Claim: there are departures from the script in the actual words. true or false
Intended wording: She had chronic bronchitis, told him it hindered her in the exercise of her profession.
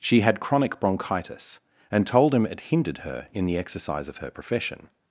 true